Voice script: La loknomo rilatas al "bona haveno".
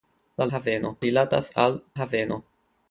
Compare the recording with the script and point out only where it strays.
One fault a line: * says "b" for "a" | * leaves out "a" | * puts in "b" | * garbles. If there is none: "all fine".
* says "haveno" for "loknomo"
* leaves out "bona"